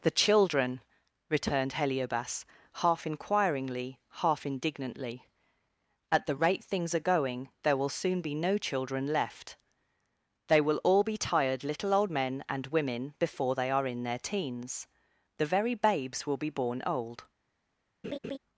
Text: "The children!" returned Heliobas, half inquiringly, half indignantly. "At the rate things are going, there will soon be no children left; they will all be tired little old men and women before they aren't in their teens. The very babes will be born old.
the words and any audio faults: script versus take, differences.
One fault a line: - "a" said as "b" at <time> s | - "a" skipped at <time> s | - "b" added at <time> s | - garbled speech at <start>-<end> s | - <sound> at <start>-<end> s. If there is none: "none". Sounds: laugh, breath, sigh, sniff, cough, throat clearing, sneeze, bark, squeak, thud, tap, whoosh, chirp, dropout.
- "aren't" said as "are" at 13.7 s
- laugh at 18.0-18.4 s